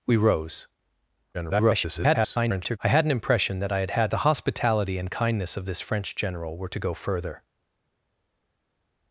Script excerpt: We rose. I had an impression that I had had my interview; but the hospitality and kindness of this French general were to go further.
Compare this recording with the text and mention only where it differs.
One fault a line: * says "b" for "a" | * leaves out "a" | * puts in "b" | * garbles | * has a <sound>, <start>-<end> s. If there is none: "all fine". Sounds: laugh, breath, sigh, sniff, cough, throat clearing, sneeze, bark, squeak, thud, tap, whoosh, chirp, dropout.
* garbles
* leaves out "my interview but"